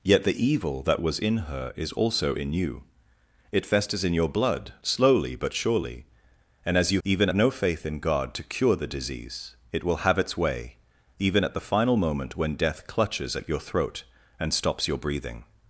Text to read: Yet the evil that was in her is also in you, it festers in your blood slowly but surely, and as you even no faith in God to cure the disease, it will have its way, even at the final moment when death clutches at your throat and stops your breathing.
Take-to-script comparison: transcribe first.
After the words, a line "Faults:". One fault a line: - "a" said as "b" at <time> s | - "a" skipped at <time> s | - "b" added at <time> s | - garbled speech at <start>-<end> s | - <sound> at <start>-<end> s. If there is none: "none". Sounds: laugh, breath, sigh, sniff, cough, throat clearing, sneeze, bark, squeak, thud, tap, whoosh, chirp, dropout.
Yet the evil that was in her is also in you, it festers in your blood slowly but surely, and as you even no faith in God to cure the disease, it will have its way, even at the final moment when death clutches at your throat and stops your breathing.
Faults:
none